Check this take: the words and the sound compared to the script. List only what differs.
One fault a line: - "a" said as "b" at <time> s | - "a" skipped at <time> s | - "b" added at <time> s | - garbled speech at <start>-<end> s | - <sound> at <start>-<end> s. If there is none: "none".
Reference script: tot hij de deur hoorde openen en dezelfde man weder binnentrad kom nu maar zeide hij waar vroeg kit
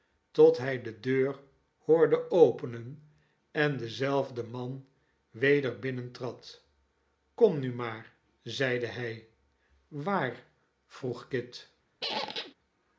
- squeak at 12.0-12.5 s